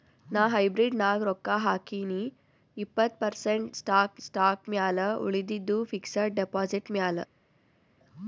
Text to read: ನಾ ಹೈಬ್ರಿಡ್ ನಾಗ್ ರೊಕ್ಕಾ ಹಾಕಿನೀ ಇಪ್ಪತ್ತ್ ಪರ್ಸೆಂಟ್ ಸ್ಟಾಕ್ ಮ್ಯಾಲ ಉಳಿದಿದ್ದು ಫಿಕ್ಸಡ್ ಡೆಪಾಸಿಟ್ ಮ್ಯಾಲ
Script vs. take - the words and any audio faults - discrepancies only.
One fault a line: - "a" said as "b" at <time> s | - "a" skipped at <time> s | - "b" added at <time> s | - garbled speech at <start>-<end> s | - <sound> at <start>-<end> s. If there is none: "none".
- "ಸ್ಟಾಕ್" added at 4.2 s